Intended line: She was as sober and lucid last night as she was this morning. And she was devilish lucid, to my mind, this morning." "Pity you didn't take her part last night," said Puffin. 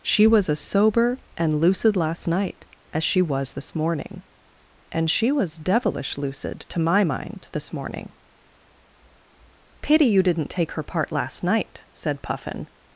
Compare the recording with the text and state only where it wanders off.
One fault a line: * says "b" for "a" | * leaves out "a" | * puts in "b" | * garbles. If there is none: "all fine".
all fine